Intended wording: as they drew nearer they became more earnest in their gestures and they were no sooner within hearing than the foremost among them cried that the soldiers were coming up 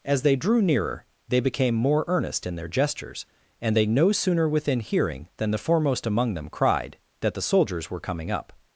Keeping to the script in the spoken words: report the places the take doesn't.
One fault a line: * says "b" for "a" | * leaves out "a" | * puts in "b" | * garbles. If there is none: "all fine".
* leaves out "were"